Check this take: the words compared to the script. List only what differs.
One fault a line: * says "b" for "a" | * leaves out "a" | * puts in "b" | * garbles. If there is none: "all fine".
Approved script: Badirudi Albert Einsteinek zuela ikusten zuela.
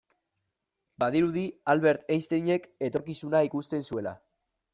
* says "etorkizuna" for "zuela"